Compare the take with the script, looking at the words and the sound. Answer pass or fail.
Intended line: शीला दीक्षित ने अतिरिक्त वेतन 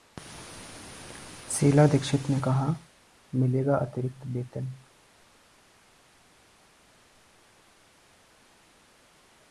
fail